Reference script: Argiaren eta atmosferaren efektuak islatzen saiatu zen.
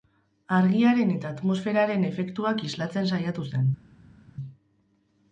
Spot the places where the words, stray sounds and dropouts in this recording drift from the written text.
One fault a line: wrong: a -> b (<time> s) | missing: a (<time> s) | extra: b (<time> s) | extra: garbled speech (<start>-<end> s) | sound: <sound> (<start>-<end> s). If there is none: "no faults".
no faults